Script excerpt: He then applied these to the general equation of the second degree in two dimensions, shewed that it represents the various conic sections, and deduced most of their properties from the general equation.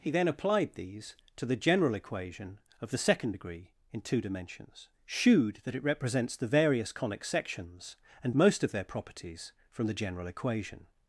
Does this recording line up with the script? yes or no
no